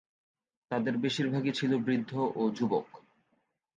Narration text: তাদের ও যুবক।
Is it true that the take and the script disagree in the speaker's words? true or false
true